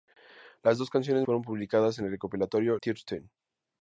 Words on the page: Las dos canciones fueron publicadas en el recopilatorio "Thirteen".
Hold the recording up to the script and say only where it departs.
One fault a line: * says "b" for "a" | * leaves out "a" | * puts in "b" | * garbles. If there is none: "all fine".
all fine